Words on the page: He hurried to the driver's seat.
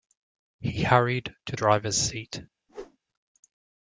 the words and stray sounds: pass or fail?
fail